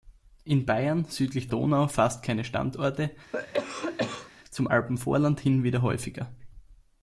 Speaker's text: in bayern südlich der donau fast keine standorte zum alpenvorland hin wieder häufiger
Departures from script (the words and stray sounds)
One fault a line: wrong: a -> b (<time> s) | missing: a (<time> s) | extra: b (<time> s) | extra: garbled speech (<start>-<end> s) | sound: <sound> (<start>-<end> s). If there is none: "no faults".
missing: der (1.5 s)
sound: cough (3.3-4.3 s)